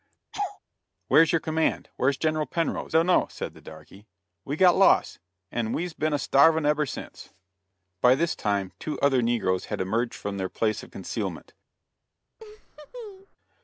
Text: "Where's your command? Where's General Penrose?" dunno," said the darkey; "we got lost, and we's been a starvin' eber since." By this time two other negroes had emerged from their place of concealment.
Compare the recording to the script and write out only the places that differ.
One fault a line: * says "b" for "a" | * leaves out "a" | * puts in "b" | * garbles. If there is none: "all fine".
all fine